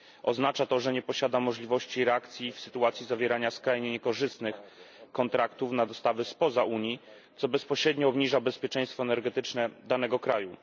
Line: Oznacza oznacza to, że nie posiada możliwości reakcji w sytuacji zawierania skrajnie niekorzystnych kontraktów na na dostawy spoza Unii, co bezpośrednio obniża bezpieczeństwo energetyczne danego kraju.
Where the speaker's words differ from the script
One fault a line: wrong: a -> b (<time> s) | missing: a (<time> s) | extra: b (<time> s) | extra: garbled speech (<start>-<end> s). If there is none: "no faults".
missing: oznacza (0.7 s)
missing: na (5.8 s)